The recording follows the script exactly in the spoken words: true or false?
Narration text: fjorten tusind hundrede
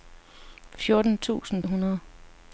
true